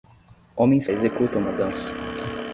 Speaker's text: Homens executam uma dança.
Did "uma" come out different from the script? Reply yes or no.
no